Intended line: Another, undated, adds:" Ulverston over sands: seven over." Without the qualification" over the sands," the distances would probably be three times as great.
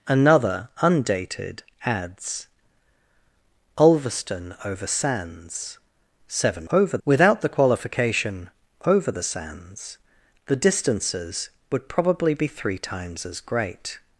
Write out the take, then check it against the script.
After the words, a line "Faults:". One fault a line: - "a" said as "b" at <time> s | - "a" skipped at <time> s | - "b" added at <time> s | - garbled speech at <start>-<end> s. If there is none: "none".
Another, undated, adds:" Ulverston over sands: seven over." Without the qualification" over the sands," the distances would probably be three times as great.
Faults:
none